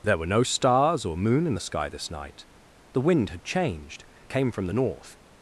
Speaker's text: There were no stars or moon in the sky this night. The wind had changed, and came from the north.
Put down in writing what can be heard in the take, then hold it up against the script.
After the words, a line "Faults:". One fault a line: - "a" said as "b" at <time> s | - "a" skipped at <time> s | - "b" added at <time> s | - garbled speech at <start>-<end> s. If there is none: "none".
There were no stars or moon in the sky this night. The wind had changed, came from the north.
Faults:
- "and" skipped at 4.1 s